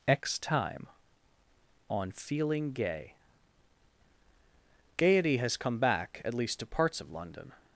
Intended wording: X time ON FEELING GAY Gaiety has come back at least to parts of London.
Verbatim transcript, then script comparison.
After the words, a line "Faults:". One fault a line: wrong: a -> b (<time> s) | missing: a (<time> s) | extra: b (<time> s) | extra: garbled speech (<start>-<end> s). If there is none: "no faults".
X time ON FEELING GAY Gaiety has come back at least to parts of London.
Faults:
no faults